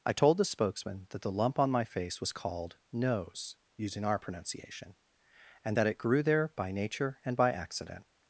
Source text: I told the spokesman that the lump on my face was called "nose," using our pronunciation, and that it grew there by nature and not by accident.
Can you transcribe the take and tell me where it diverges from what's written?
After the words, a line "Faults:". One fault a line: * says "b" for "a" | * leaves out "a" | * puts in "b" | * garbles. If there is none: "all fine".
I told the spokesman that the lump on my face was called "nose," using our pronunciation, and that it grew there by nature and by accident.
Faults:
* leaves out "not"